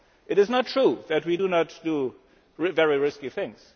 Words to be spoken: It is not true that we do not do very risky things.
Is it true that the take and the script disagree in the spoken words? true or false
false